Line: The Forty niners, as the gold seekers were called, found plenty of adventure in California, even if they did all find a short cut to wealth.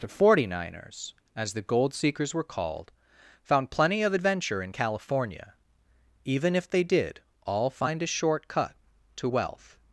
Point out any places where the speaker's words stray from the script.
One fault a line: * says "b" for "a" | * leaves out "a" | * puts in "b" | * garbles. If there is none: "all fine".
all fine